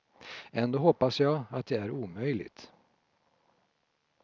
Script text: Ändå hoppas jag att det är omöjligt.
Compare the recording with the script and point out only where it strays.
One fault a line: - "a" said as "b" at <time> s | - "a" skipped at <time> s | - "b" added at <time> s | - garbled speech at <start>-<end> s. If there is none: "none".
none